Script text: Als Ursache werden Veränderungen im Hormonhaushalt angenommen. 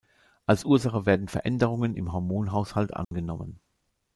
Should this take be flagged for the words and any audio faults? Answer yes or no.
yes